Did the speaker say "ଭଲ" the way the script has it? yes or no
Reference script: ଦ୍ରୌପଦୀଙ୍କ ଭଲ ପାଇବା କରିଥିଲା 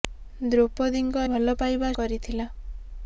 yes